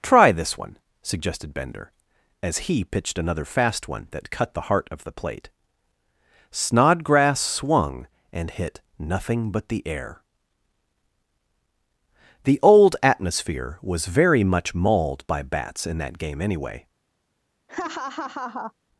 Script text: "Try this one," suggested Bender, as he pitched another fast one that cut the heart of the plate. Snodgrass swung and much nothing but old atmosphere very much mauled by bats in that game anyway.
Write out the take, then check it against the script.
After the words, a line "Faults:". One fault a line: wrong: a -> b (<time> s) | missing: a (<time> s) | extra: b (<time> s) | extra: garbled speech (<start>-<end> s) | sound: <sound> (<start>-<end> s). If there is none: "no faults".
"Try this one," suggested Bender, as he pitched another fast one that cut the heart of the plate. Snodgrass swung and hit nothing but the air. The old atmosphere was very much mauled by bats in that game anyway.
Faults:
wrong: much -> hit (8.5 s)
extra: the air The (9.7 s)
extra: was (13.8 s)
sound: laugh (17.7-18.7 s)